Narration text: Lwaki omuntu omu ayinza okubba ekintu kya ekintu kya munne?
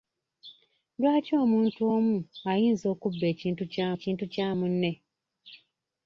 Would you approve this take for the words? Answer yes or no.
yes